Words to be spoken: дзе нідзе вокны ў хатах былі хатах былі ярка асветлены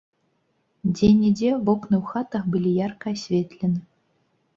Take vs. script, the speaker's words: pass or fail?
fail